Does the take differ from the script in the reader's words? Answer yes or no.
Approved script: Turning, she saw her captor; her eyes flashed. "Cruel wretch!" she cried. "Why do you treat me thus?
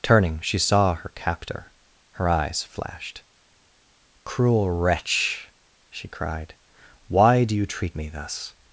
no